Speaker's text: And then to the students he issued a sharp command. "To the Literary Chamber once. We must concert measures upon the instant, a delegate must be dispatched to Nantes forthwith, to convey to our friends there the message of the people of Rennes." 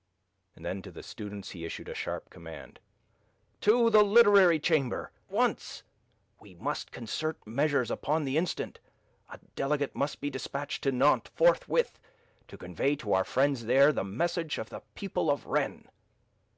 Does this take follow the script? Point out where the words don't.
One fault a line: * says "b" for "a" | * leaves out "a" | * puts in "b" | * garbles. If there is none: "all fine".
all fine